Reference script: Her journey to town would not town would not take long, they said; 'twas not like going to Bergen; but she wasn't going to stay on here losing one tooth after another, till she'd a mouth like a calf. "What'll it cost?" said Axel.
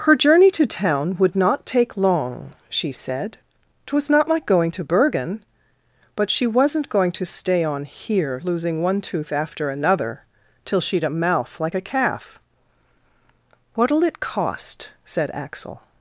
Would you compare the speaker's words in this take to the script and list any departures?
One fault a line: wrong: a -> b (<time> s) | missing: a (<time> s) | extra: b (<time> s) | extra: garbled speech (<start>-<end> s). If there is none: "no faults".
missing: town would not (1.6 s)
wrong: they -> she (2.7 s)